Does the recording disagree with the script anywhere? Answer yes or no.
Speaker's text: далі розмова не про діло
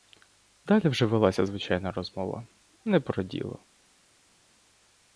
yes